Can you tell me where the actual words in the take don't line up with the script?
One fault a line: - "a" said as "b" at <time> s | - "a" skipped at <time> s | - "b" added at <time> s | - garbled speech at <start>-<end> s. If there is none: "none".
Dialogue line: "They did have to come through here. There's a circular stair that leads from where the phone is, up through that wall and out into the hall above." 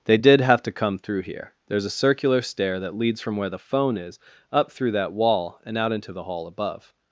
none